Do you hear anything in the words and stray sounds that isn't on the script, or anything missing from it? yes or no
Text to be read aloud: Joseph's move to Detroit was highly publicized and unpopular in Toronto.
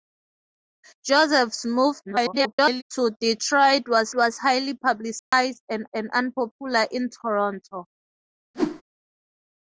yes